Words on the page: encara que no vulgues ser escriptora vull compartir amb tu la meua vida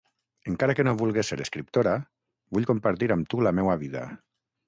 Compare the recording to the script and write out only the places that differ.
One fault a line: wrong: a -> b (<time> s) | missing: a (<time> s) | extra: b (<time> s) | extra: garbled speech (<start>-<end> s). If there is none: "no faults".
no faults